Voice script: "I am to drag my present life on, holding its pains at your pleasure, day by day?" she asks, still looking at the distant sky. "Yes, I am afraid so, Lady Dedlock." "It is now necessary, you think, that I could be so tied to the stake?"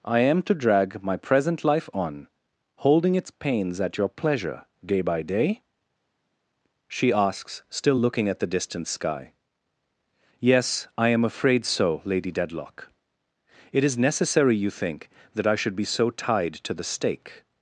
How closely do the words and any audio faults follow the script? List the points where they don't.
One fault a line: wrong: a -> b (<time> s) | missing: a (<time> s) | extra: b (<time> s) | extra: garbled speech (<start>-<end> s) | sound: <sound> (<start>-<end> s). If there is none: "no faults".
missing: now (14.0 s)
wrong: could -> should (15.5 s)